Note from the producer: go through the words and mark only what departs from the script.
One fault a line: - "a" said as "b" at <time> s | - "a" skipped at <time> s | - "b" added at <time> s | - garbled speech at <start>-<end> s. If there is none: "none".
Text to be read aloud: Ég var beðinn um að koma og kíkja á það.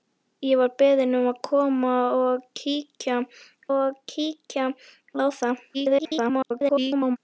- "og kíkja" added at 3.8 s
- garbled speech at 5.7-7.2 s